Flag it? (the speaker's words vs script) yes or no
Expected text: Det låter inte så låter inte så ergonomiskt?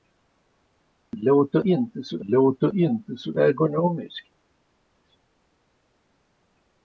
no